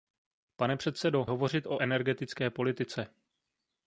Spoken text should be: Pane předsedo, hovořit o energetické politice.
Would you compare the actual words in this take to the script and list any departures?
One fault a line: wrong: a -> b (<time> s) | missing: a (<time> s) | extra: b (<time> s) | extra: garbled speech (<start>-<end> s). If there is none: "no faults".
no faults